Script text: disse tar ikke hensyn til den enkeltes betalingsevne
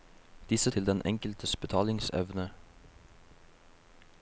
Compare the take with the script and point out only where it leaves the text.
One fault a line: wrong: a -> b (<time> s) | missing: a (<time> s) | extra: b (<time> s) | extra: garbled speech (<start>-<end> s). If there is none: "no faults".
missing: tar ikke hensyn (0.7 s)